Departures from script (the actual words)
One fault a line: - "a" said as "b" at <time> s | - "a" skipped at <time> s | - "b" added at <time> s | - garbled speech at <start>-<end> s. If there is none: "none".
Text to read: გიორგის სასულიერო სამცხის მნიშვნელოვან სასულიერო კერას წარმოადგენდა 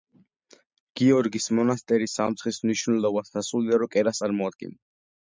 - "სასულიერო" said as "მონასტერი" at 1.6 s